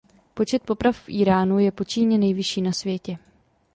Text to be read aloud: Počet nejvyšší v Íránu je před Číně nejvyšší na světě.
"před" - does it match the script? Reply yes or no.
no